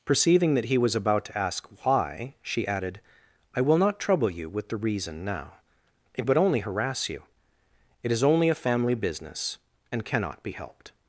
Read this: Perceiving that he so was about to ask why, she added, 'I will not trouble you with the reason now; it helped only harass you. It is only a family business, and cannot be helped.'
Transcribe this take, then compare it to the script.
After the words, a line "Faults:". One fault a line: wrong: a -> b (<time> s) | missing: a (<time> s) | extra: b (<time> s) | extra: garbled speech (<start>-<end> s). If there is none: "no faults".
Perceiving that he was about to ask why, she added, 'I will not trouble you with the reason now; it would only harass you. It is only a family business, and cannot be helped.'
Faults:
missing: so (0.8 s)
wrong: helped -> would (6.3 s)